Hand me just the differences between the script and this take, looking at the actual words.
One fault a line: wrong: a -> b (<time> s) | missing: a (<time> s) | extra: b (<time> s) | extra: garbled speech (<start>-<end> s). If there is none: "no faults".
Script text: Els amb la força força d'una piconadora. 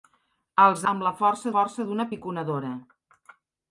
no faults